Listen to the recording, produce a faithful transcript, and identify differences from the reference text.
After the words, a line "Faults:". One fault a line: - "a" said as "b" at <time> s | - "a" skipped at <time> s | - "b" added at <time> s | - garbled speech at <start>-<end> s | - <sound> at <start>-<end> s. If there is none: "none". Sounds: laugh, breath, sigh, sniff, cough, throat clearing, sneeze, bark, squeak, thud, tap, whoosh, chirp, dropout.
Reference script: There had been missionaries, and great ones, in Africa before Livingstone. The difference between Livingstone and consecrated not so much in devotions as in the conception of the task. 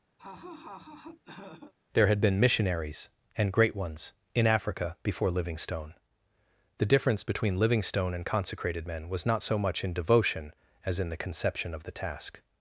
There had been missionaries, and great ones, in Africa before Livingstone. The difference between Livingstone and consecrated men was not so much in devotion as in the conception of the task.
Faults:
- laugh at 0.2-1.7 s
- "men was" added at 8.8 s
- "devotions" said as "devotion" at 9.9 s